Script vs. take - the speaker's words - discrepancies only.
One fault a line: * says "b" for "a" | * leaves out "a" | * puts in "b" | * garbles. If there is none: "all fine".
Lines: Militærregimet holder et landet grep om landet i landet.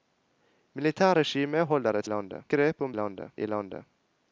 all fine